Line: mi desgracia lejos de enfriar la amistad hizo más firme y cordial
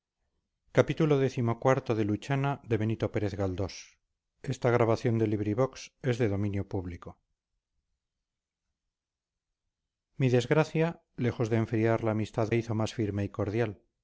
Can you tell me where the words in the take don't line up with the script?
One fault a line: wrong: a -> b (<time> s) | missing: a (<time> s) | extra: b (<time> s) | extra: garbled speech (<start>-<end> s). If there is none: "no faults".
no faults